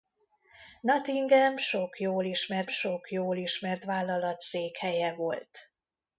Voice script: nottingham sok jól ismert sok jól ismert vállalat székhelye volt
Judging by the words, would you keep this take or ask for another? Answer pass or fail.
pass